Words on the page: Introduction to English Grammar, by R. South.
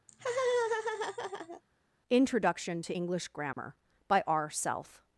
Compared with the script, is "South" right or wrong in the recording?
wrong